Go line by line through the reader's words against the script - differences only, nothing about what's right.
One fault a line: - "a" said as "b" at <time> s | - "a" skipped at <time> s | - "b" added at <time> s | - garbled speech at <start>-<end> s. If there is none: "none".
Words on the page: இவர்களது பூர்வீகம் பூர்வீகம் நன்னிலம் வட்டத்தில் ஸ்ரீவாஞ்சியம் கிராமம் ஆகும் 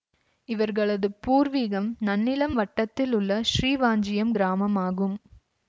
- "பூர்வீகம்" skipped at 1.9 s
- "உள்ள" added at 3.1 s